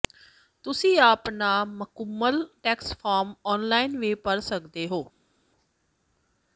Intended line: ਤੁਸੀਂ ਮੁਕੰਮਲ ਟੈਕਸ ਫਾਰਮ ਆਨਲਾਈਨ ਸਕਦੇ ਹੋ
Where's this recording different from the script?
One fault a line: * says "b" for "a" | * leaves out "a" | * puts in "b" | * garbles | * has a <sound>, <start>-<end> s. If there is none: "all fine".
* puts in "ਆਪਣਾ"
* puts in "ਵੀ ਭਰ"